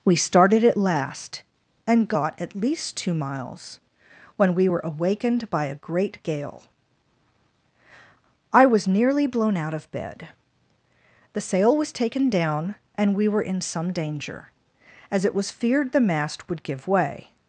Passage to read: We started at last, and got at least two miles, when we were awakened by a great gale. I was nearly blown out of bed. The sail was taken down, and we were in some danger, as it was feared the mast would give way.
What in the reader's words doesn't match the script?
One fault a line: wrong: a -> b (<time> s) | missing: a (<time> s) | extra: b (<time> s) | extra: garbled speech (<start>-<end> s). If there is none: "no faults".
no faults